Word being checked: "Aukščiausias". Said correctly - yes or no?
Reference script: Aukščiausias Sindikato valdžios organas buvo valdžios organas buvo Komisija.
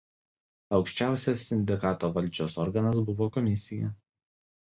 yes